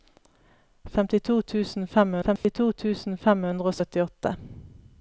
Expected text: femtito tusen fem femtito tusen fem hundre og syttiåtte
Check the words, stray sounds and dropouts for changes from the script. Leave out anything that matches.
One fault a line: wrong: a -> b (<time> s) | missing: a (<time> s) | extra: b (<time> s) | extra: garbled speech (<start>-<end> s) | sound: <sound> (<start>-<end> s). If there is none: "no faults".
sound: dropout (2.4-2.4 s)